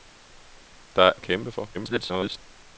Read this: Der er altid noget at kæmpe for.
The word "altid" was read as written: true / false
false